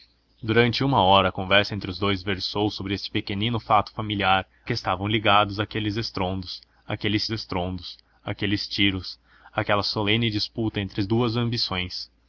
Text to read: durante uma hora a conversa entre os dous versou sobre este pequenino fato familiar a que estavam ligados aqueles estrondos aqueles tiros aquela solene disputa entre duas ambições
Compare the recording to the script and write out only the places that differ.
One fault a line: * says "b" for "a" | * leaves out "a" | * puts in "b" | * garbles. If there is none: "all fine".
* leaves out "a"
* puts in "estrondos aqueles"